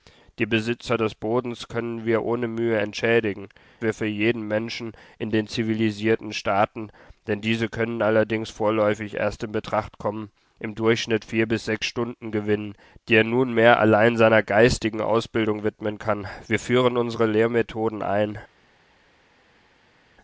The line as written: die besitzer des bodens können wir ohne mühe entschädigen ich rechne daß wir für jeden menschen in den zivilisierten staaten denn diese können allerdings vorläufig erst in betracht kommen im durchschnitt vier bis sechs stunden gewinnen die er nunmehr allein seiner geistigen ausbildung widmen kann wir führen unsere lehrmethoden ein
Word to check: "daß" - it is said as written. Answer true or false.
false